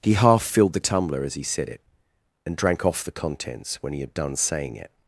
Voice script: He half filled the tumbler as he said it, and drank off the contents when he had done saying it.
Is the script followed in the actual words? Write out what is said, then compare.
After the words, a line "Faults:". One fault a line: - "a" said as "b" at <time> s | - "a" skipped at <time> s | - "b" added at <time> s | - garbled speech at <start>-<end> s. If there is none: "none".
He half filled the tumbler as he said it, and drank off the contents when he had done saying it.
Faults:
none